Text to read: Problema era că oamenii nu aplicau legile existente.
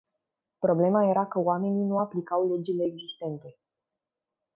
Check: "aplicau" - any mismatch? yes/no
no